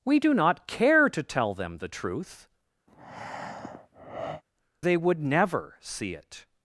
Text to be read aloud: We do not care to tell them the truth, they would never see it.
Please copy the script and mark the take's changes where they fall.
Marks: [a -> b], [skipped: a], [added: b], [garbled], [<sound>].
We do not care to tell them the truth, [breath] they would never see it.